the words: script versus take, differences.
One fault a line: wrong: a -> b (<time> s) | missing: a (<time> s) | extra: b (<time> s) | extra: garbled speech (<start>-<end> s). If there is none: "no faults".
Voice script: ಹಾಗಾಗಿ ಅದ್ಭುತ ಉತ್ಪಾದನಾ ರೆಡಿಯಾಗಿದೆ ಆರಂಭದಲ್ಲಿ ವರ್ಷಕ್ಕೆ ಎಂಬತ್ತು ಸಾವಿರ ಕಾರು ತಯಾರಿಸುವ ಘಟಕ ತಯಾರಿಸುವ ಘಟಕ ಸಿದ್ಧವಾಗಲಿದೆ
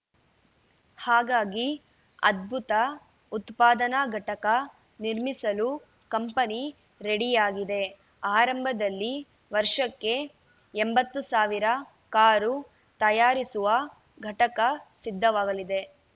extra: ಘಟಕ ನಿರ್ಮಿಸಲು ಕಂಪನಿ (4.1 s)
missing: ತಯಾರಿಸುವ ಘಟಕ (14.6 s)